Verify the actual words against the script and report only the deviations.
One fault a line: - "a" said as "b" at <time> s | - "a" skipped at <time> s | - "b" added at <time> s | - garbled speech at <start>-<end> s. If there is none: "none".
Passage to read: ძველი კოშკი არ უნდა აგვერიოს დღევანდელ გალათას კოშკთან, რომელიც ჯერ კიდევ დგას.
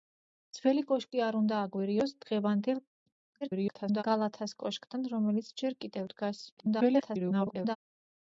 - garbled speech at 3.4-4.0 s
- garbled speech at 6.6-7.8 s